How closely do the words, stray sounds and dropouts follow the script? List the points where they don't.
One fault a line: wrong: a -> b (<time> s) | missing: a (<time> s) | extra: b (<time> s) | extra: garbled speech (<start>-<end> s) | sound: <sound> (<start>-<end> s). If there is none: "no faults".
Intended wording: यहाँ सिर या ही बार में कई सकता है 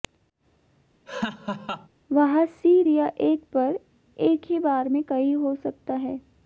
sound: laugh (1.1-1.9 s)
wrong: यहाँ -> वहाँ (2.1 s)
extra: एक पर एक (3.2 s)
extra: हो (5.3 s)